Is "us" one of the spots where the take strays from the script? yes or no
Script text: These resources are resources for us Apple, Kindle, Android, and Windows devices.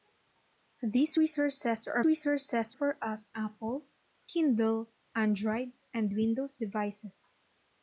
no